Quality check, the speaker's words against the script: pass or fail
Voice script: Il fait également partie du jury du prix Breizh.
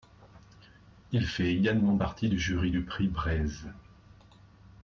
pass